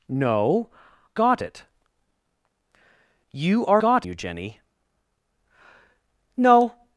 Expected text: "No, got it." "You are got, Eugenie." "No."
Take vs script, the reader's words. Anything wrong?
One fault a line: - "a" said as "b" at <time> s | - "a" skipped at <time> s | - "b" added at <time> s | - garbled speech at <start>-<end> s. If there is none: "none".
none